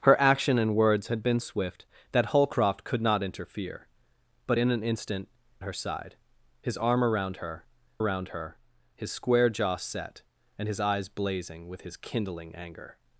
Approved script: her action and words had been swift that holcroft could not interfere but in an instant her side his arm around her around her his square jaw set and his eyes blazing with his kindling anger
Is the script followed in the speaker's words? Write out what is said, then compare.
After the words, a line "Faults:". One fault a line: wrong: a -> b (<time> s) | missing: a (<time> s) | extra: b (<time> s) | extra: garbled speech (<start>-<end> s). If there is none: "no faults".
her action and words had been swift that holcroft could not interfere but in an instant her side his arm around her around her his square jaw set and his eyes blazing with his kindling anger
Faults:
no faults